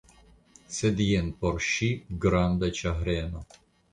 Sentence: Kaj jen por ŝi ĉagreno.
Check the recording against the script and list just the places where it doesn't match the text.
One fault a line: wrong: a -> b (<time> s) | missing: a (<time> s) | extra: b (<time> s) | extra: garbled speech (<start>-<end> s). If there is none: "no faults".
wrong: Kaj -> Sed (0.8 s)
extra: granda (2.3 s)